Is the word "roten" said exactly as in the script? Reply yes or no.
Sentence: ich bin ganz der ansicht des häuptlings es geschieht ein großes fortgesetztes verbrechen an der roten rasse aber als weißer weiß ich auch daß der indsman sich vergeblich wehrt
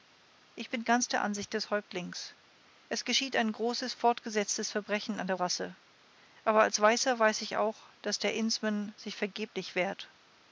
no